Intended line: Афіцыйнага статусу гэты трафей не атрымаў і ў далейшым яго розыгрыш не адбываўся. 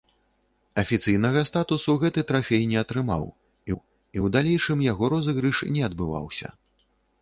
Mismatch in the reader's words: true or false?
true